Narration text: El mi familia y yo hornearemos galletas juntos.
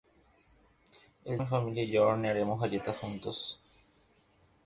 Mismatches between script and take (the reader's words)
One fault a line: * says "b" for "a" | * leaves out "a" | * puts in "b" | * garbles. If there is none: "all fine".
all fine